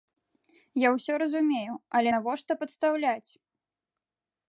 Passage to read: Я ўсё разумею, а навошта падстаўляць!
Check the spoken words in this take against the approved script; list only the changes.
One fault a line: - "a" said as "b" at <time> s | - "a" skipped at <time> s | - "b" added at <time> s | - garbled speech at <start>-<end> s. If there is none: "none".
- "а" said as "але" at 2.0 s